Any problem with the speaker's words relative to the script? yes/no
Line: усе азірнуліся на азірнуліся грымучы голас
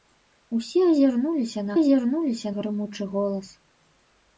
no